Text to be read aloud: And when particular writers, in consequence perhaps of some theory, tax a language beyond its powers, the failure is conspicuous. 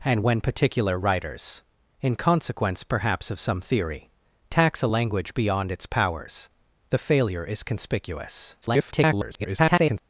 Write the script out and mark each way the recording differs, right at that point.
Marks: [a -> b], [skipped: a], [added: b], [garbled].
And when particular writers, in consequence perhaps of some theory, tax a language beyond its powers, the failure is conspicuous. [garbled]